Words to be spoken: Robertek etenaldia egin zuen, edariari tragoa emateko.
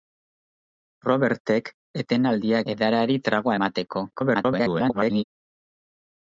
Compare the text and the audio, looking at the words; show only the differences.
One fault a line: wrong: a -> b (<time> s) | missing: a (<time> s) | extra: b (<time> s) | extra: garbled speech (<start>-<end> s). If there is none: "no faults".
missing: egin zuen (2.6 s)
extra: garbled speech (4.1-5.2 s)